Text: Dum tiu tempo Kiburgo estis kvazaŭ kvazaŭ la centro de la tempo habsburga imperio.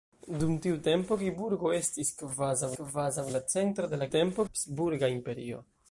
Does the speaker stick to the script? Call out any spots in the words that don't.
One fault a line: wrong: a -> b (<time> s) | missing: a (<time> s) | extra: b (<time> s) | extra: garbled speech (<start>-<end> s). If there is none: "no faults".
no faults